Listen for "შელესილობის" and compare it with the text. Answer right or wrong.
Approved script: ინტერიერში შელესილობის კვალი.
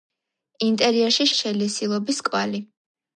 right